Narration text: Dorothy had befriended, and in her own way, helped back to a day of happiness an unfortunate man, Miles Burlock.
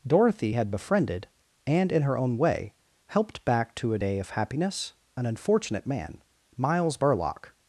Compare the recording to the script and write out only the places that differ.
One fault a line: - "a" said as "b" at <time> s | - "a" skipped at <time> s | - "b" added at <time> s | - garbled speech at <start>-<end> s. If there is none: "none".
none